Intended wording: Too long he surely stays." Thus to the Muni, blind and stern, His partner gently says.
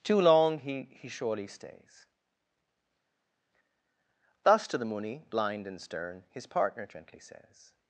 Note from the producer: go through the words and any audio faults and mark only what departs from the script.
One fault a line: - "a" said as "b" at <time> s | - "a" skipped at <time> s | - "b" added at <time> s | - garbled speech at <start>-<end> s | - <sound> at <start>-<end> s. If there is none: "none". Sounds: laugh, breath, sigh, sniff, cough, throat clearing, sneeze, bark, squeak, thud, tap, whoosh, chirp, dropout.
- "he" added at 1.0 s